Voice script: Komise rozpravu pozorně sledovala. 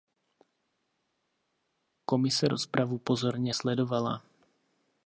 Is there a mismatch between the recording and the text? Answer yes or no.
no